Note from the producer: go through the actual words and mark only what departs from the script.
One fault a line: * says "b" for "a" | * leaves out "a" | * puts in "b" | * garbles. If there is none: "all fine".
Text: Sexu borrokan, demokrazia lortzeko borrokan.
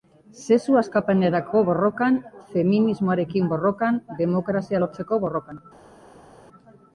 * puts in "askapenerako borrokan feminismoarekin"